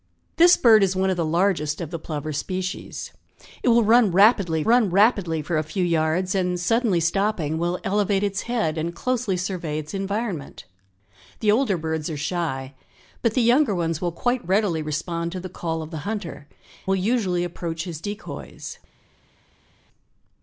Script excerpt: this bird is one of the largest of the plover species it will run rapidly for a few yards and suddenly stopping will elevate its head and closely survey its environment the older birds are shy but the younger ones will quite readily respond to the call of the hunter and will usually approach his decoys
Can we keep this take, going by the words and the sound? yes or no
no